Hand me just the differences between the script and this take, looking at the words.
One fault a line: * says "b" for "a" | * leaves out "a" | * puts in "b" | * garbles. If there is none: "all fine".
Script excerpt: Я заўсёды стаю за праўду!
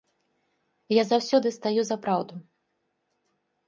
all fine